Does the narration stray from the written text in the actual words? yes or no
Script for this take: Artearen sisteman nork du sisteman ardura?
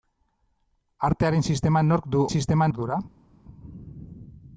no